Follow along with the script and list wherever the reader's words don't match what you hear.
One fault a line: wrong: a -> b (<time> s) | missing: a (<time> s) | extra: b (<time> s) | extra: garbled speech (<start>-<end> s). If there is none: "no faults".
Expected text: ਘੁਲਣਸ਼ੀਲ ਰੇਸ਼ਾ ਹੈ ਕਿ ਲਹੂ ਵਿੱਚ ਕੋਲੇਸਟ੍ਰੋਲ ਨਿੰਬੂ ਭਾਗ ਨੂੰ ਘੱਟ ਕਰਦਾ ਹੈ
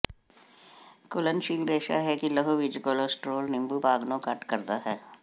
no faults